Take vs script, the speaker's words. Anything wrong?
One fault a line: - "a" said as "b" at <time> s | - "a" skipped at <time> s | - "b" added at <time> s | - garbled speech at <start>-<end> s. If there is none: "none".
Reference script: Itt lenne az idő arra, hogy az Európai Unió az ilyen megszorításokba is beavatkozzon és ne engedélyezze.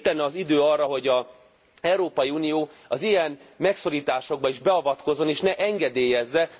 none